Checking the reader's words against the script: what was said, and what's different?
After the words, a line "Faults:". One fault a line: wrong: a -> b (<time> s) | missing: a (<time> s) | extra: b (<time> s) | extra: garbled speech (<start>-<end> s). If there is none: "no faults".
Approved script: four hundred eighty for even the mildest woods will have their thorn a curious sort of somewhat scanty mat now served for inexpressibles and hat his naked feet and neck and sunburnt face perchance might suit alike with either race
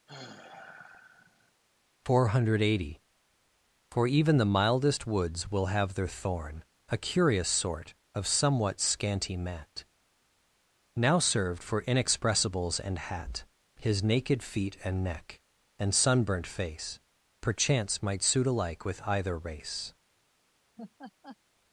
four hundred eighty for even the mildest woods will have their thorn a curious sort of somewhat scanty mat now served for inexpressibles and hat his naked feet and neck and sunburnt face perchance might suit alike with either race
Faults:
no faults